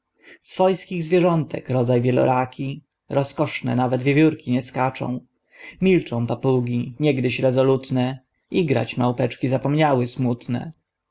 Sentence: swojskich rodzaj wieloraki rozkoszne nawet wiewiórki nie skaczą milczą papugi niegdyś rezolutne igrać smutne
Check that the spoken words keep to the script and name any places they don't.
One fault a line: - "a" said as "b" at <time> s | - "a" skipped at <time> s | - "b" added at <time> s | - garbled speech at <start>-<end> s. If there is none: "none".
- "zwierzątek" added at 1.0 s
- "małpeczki zapomniały" added at 9.0 s